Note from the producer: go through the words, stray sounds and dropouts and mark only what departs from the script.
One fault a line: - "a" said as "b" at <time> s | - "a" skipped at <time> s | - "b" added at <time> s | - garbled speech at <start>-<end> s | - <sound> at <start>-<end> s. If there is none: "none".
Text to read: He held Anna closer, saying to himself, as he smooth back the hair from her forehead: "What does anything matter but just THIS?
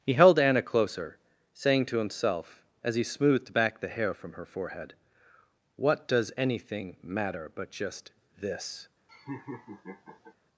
- "smooth" said as "smoothed" at 3.0 s
- laugh at 9.1-10.3 s